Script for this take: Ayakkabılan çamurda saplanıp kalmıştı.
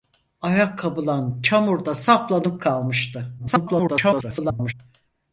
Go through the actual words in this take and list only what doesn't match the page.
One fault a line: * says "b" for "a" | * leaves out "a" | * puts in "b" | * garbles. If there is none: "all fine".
* garbles